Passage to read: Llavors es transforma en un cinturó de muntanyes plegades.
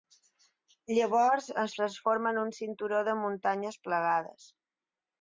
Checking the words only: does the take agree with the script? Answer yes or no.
yes